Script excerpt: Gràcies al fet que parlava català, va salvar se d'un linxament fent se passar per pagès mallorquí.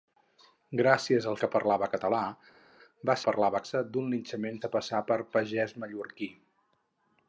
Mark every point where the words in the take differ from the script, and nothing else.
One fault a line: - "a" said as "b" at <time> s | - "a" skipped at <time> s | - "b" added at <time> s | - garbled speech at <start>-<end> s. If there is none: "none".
- "fet" skipped at 1.4 s
- "salvar" said as "parlava" at 3.3 s
- "fent" skipped at 4.6 s